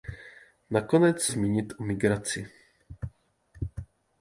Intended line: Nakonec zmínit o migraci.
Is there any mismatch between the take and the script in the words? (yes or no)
no